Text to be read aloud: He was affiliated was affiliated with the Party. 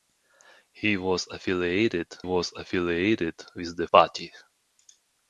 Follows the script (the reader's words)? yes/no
yes